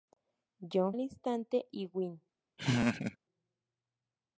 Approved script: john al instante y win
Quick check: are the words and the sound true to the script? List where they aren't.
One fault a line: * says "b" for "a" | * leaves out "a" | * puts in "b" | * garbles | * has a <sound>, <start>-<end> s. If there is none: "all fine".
* has a laugh, 2.6-3.2 s